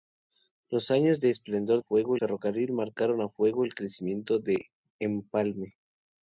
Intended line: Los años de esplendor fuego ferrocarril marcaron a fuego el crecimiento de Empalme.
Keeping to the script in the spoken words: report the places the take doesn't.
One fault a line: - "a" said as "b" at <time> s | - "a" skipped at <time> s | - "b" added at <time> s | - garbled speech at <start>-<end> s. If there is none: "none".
none